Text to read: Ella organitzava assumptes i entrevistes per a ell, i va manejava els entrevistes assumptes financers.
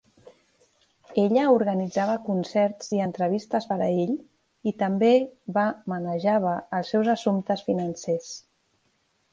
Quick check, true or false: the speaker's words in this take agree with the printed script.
false